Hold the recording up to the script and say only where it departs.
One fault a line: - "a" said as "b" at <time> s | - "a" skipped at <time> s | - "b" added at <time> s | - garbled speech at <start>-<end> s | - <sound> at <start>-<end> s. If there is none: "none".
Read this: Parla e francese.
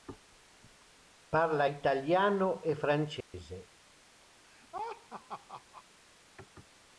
- "italiano" added at 1.6 s
- dropout at 3.2-3.3 s
- laugh at 4.4-5.8 s